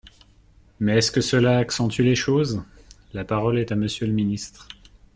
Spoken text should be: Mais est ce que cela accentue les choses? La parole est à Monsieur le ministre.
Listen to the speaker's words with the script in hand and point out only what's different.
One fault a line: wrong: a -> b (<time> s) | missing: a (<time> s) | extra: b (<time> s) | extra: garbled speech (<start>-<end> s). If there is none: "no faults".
no faults